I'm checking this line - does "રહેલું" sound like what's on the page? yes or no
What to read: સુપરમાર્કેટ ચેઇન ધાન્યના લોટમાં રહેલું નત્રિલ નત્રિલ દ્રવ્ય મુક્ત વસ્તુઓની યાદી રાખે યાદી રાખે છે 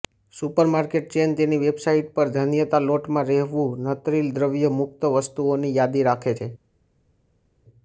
yes